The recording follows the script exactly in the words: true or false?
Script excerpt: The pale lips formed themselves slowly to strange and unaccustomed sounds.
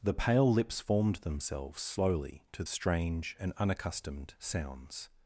true